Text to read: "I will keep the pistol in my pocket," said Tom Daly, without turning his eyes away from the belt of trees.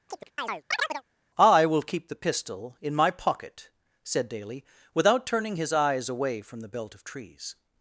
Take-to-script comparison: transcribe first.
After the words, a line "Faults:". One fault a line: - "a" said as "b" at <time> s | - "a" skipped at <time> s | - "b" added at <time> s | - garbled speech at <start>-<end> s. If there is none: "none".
"I will keep the pistol in my pocket," said Daly, without turning his eyes away from the belt of trees.
Faults:
- "Tom" skipped at 4.3 s